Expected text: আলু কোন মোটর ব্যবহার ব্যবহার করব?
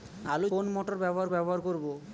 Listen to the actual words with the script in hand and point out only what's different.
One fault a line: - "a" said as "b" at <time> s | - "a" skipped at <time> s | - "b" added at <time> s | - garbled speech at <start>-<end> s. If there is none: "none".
none